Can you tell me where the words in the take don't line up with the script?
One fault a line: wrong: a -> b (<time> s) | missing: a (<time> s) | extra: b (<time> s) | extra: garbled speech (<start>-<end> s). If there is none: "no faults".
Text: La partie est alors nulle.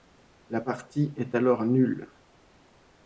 no faults